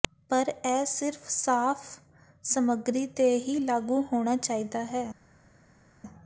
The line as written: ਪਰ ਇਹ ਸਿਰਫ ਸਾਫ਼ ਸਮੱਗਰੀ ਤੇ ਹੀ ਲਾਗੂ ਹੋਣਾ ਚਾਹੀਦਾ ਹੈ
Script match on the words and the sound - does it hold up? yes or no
yes